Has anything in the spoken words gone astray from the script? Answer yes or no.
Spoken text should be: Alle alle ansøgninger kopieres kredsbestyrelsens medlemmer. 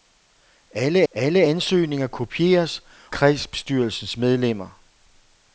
no